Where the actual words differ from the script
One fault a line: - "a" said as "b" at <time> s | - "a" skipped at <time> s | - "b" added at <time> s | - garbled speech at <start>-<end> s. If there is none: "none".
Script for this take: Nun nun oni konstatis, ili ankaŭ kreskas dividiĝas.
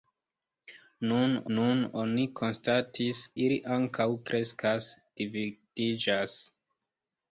none